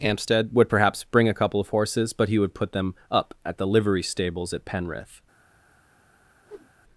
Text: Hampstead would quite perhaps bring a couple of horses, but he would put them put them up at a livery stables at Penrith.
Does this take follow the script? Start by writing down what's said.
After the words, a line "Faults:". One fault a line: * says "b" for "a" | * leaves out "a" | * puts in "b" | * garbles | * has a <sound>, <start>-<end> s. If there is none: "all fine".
Hampstead would perhaps bring a couple of horses, but he would put them up at the livery stables at Penrith.
Faults:
* leaves out "quite"
* leaves out "put them"
* says "the" for "a"
* has a whoosh, 6.5-6.7 s